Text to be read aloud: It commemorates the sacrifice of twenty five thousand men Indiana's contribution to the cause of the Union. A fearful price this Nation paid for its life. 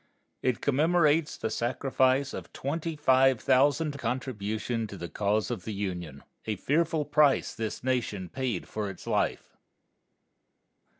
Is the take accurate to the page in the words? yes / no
no